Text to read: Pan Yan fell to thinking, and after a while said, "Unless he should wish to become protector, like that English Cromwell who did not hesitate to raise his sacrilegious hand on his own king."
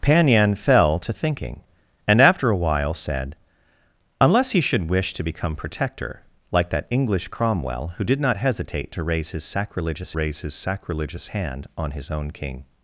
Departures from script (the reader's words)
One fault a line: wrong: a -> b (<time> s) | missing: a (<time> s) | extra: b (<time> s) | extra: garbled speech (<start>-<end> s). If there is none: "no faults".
extra: raise his sacrilegious (10.1 s)